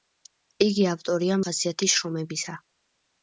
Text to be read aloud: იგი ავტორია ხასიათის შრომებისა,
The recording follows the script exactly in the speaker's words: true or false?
true